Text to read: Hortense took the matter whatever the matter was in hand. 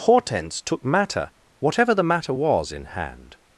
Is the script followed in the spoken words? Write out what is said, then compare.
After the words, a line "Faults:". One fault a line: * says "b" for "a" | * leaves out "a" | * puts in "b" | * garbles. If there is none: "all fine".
Hortense took matter whatever the matter was in hand.
Faults:
* leaves out "the"